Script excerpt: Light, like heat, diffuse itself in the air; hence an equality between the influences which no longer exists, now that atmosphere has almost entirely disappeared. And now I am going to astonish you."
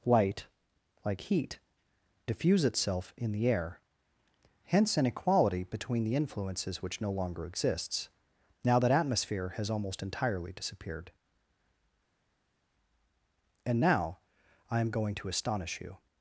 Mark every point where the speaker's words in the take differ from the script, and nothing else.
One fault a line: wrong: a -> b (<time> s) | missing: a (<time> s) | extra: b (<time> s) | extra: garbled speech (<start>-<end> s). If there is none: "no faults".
no faults